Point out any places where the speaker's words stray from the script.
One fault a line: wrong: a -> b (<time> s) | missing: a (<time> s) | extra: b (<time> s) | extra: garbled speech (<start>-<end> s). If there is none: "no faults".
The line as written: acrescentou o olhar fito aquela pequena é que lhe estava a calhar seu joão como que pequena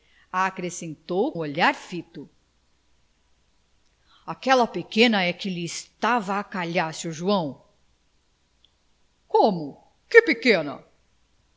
no faults